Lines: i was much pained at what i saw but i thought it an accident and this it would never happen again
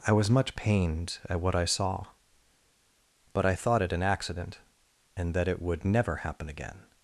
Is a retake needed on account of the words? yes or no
yes